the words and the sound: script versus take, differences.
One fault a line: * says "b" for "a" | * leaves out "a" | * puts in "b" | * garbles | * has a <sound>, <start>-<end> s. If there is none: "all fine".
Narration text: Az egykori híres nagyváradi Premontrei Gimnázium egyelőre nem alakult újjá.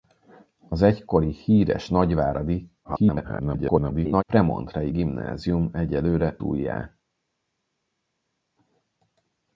* garbles
* leaves out "nem alakult"